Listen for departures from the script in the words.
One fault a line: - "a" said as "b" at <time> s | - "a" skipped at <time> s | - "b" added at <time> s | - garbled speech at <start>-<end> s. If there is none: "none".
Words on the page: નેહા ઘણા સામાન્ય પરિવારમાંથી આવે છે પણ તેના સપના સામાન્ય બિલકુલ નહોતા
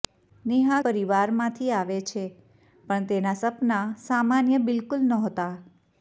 - "ઘણા સામાન્ય" skipped at 0.8 s